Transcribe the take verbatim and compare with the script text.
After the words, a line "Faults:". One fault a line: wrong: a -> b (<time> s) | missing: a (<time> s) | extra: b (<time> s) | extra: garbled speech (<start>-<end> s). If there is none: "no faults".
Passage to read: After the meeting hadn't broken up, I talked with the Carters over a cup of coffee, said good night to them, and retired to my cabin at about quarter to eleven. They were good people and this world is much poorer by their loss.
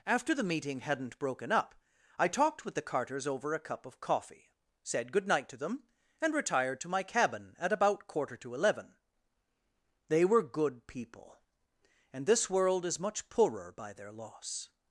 After the meeting hadn't broken up, I talked with the Carters over a cup of coffee, said good night to them, and retired to my cabin at about quarter to eleven. They were good people and this world is much poorer by their loss.
Faults:
no faults